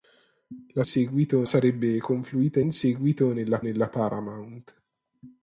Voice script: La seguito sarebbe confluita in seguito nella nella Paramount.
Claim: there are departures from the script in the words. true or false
false